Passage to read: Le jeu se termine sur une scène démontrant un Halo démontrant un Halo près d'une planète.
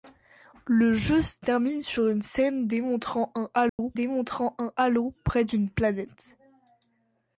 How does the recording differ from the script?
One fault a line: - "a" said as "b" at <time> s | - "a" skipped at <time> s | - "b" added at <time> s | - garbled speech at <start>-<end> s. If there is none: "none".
none